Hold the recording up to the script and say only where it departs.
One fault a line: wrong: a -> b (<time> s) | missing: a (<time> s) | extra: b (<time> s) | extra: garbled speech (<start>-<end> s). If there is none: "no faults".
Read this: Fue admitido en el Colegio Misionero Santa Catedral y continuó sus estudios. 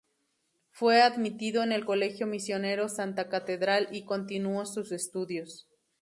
no faults